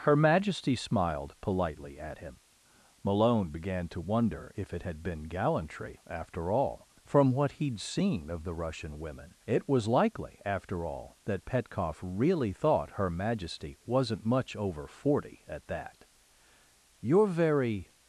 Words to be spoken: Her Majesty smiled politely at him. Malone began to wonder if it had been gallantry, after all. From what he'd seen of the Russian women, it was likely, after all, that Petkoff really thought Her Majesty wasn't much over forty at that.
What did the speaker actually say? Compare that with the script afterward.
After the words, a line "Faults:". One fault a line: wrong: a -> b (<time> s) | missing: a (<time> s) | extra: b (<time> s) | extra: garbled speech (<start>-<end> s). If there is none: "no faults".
Her Majesty smiled politely at him. Malone began to wonder if it had been gallantry, after all. From what he'd seen of the Russian women, it was likely, after all, that Petkoff really thought Her Majesty wasn't much over forty at that. "You're very
Faults:
extra: You're very (17.0 s)